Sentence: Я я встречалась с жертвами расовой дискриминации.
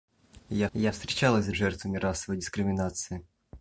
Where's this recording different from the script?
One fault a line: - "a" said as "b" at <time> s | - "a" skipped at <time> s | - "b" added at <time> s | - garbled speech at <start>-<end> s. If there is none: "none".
none